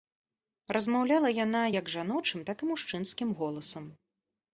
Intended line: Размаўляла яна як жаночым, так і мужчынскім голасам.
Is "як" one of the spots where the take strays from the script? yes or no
no